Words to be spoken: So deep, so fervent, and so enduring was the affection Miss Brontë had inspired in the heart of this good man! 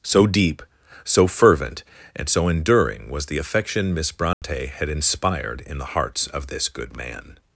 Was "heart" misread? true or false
true